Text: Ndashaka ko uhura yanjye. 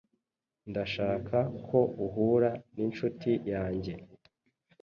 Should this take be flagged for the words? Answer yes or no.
yes